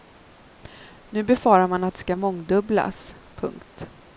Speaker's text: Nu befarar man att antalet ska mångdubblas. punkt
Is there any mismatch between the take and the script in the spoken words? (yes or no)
yes